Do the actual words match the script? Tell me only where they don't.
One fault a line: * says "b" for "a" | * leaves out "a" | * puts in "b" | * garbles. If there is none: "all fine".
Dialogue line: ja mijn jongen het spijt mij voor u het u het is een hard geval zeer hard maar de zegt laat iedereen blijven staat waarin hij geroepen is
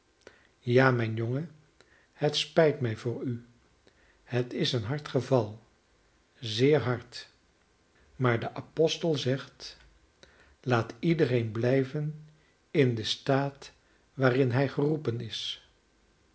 * leaves out "u het"
* puts in "apostel"
* puts in "in den"